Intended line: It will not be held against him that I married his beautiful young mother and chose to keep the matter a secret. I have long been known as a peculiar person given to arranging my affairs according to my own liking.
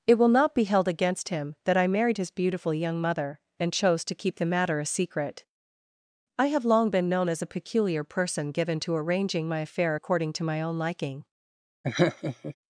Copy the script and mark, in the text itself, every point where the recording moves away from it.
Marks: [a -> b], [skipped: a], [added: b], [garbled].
It will not be held against him that I married his beautiful young mother and chose to keep the matter a secret. I have long been known as a peculiar person given to arranging my [affairs -> affair] according to my own liking.